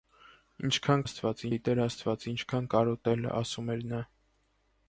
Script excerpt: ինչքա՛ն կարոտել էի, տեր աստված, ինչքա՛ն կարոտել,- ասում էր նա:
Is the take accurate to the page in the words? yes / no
no